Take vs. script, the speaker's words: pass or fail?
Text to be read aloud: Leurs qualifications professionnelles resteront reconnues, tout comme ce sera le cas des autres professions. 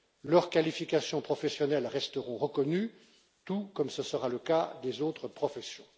pass